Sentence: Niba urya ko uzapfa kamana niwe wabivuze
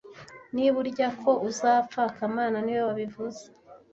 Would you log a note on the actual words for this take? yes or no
no